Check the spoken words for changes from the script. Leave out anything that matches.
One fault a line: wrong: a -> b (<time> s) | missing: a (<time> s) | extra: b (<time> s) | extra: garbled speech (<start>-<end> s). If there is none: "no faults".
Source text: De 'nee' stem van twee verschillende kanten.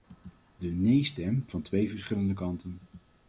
no faults